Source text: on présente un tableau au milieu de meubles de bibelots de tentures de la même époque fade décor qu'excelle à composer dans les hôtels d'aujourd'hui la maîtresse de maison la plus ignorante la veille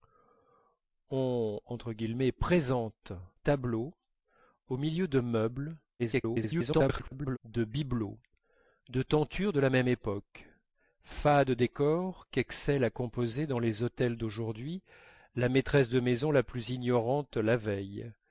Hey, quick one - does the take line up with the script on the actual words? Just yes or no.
no